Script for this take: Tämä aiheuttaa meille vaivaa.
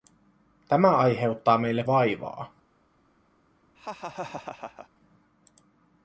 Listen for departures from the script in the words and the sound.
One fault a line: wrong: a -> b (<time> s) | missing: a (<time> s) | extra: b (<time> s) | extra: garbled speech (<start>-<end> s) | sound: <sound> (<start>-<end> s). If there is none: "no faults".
sound: laugh (3.7-4.9 s)